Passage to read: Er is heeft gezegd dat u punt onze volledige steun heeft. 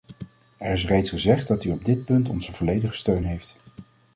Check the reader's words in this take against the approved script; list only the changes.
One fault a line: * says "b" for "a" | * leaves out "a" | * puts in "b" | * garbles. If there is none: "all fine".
* says "reeds" for "heeft"
* puts in "op dit"